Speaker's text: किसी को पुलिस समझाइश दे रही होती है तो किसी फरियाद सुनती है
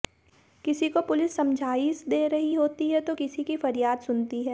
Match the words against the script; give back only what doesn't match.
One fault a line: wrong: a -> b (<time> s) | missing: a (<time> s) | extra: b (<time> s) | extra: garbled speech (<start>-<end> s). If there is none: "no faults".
extra: की (3.4 s)